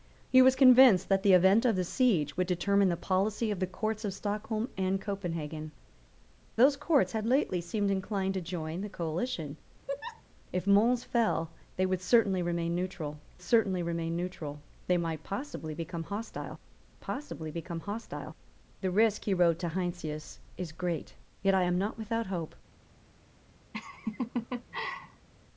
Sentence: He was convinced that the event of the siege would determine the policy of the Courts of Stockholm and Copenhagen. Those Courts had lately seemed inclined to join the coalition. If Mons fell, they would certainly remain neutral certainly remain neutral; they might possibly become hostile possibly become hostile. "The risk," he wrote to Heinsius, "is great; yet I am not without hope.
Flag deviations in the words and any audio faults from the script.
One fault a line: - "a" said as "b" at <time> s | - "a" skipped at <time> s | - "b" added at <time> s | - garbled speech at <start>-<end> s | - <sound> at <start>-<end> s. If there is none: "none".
- laugh at 9.9-10.2 s
- laugh at 23.7-25.3 s